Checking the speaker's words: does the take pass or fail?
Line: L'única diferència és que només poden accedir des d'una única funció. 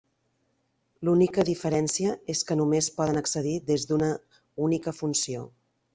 pass